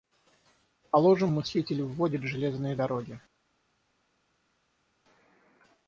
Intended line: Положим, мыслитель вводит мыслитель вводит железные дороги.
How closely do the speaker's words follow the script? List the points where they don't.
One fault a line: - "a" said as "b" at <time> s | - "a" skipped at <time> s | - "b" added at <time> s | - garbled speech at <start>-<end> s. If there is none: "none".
- "мыслитель вводит" skipped at 2.2 s